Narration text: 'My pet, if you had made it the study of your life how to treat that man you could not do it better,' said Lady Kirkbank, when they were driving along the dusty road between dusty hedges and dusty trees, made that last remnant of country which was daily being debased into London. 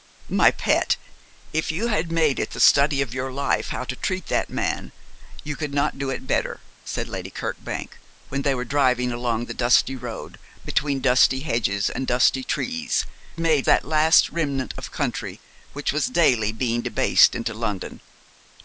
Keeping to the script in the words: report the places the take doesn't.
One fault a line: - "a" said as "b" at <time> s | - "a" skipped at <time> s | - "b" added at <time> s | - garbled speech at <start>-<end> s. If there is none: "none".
none